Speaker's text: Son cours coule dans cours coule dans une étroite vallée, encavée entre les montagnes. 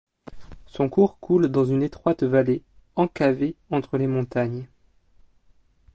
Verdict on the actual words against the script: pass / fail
fail